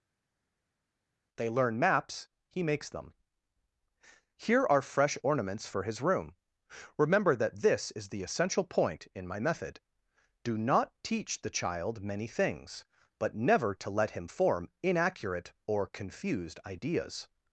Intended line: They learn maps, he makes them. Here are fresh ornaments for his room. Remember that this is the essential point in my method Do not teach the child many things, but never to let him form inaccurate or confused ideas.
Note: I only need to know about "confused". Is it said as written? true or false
true